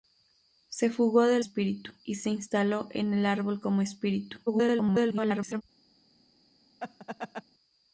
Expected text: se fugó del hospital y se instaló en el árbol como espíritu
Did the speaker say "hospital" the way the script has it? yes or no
no